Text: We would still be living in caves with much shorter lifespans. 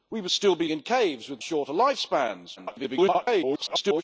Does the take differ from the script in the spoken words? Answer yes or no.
yes